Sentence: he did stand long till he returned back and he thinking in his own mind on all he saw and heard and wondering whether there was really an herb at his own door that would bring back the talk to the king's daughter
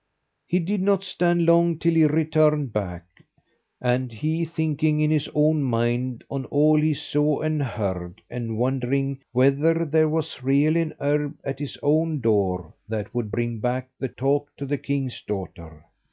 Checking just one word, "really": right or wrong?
right